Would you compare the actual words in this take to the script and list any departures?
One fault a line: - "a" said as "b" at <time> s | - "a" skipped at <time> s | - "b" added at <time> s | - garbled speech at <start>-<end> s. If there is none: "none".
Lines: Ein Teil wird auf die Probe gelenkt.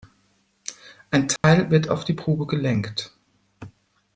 none